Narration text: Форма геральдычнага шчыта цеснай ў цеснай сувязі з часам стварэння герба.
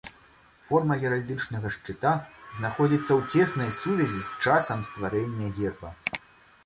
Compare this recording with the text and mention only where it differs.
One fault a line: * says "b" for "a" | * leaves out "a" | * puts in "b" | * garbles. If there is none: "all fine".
* says "знаходзіцца" for "цеснай"